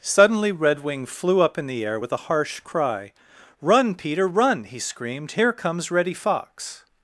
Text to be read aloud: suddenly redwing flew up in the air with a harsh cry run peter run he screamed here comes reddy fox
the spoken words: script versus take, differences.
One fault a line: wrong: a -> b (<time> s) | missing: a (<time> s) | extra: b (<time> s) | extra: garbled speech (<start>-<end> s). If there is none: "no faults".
no faults